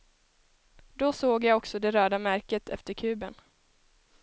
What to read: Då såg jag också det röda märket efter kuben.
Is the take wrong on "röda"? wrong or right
right